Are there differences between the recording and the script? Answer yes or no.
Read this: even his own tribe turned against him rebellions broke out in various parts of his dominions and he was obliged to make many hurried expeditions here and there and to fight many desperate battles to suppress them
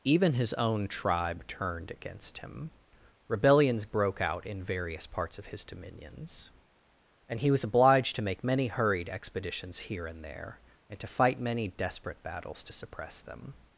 no